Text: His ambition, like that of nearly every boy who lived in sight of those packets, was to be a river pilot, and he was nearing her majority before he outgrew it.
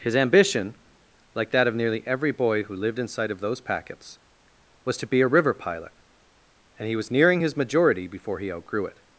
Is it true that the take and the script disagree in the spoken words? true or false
true